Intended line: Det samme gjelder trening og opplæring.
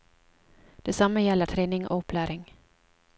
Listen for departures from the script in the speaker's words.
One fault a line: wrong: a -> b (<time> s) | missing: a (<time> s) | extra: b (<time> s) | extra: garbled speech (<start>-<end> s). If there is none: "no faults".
no faults